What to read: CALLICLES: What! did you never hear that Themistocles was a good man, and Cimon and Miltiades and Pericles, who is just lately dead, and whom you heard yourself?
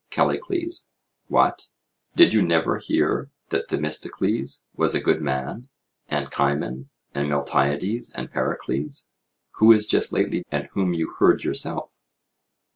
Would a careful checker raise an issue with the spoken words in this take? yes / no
yes